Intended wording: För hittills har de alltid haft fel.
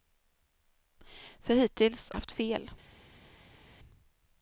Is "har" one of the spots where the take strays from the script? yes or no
yes